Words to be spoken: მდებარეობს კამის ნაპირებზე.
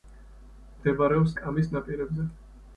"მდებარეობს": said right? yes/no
yes